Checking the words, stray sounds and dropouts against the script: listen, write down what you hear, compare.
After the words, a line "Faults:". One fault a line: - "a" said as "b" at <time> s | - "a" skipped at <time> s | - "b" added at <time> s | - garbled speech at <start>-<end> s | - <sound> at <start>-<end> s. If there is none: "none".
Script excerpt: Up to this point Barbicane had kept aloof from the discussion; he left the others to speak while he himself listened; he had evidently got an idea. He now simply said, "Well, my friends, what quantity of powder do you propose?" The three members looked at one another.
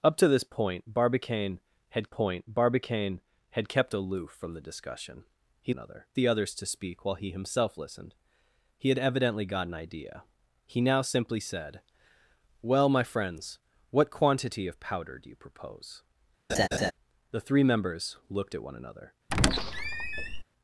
Up to this point Barbicane had point Barbicane had kept aloof from the discussion; he another the others to speak while he himself listened; he had evidently got an idea. He now simply said, "Well, my friends, what quantity of powder do you propose?" The three members looked at one another.
Faults:
- "point Barbicane had" added at 2.0 s
- "left" said as "another" at 5.7 s
- laugh at 16.5-16.9 s
- squeak at 19.3-20.4 s